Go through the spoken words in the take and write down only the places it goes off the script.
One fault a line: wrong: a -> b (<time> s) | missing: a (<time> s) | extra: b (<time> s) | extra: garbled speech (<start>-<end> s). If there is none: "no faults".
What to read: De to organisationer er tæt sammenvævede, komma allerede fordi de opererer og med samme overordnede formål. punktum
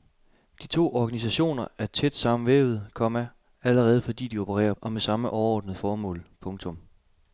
no faults